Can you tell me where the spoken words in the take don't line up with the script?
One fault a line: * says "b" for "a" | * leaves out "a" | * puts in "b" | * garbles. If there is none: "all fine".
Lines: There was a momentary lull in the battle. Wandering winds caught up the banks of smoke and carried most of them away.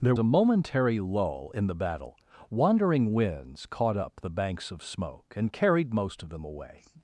* leaves out "was"